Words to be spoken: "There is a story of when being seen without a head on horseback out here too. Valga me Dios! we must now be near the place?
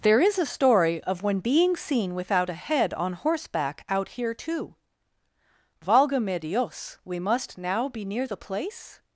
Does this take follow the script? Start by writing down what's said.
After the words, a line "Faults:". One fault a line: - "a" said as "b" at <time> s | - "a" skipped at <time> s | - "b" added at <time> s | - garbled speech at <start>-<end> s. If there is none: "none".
"There is a story of when being seen without a head on horseback out here too. Valga me Dios! we must now be near the place?
Faults:
none